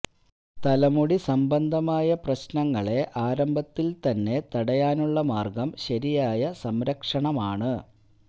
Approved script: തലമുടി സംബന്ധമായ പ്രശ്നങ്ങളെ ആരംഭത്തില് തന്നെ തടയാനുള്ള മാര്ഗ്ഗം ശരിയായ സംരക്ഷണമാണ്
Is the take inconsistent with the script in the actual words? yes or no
no